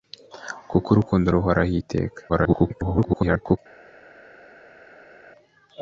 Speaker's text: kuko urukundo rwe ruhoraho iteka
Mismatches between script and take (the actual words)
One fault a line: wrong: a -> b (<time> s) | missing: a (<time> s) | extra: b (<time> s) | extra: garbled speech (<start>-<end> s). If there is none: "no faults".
missing: rwe (1.3 s)
extra: garbled speech (2.3-3.6 s)